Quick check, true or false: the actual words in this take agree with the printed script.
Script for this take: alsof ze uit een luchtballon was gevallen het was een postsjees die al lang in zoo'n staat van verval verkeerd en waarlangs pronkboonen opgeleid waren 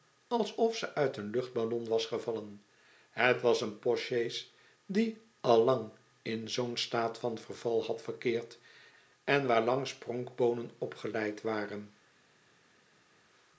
false